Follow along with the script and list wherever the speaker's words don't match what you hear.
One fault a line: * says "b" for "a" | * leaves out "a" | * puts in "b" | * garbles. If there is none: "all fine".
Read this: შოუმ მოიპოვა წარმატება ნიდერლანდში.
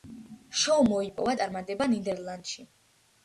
all fine